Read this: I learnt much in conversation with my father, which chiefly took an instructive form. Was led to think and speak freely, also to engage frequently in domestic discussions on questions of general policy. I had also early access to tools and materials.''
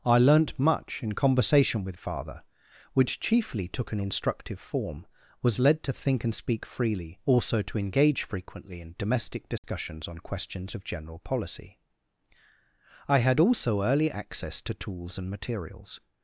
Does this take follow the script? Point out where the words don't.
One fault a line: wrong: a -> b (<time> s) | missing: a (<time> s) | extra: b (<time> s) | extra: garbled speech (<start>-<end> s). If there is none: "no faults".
missing: my (2.0 s)